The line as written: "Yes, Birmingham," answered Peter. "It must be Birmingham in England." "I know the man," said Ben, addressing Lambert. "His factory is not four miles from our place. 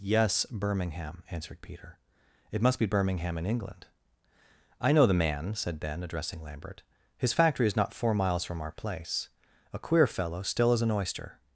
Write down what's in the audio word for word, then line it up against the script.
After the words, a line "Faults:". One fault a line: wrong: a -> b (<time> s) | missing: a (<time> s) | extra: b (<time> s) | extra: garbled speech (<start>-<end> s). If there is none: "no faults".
"Yes, Birmingham," answered Peter. "It must be Birmingham in England." "I know the man," said Ben, addressing Lambert. "His factory is not four miles from our place. A queer fellow still as an oyster
Faults:
extra: A queer fellow still as an oyster (9.7 s)